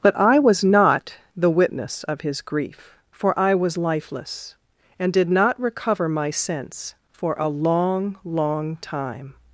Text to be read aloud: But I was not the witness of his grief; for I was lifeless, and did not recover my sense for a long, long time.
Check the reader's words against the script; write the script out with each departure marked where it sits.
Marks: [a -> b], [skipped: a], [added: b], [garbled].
But I was not the witness of his grief; for I was lifeless, and did not recover my sense for a long, long time.